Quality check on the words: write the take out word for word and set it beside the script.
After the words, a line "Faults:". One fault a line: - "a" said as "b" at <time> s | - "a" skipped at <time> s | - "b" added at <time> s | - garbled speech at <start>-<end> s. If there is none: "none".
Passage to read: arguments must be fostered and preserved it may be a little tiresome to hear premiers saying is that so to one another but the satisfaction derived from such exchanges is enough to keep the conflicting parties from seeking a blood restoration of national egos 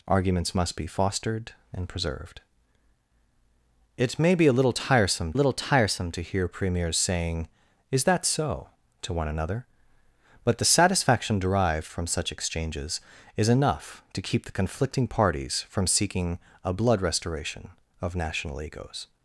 arguments must be fostered and preserved it may be a little tiresome little tiresome to hear premiers saying is that so to one another but the satisfaction derived from such exchanges is enough to keep the conflicting parties from seeking a blood restoration of national egos
Faults:
- "little tiresome" added at 5.3 s